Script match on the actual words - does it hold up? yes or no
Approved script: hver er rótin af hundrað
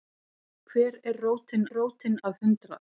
no